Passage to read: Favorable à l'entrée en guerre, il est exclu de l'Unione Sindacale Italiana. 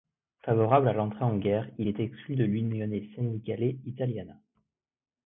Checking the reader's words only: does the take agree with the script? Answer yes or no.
yes